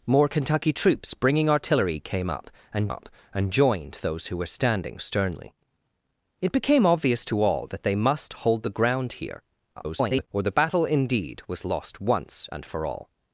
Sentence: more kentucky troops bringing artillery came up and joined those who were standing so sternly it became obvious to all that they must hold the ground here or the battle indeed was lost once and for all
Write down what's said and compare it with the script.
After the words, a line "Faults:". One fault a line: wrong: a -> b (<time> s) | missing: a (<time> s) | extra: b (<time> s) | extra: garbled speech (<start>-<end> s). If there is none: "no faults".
more kentucky troops bringing artillery came up and up and joined those who were standing sternly it became obvious to all that they must hold the ground here [garbled] or the battle indeed was lost once and for all
Faults:
extra: up and (2.9 s)
missing: so (5.0 s)
extra: garbled speech (9.8-10.3 s)